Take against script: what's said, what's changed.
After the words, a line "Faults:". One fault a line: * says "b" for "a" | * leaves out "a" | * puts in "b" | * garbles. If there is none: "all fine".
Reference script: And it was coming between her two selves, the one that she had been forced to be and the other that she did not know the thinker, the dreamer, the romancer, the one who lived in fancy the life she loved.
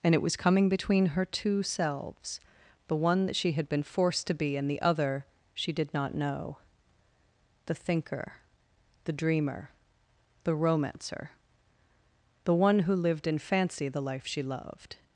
And it was coming between her two selves, the one that she had been forced to be and the other she did not know the thinker, the dreamer, the romancer, the one who lived in fancy the life she loved.
Faults:
* leaves out "that"